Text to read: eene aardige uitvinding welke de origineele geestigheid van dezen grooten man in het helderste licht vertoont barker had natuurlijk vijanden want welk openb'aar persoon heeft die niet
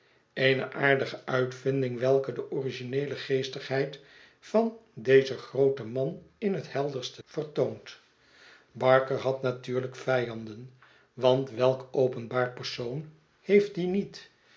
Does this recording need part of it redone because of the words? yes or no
yes